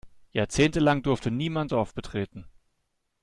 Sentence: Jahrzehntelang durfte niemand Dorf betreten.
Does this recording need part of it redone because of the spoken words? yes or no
no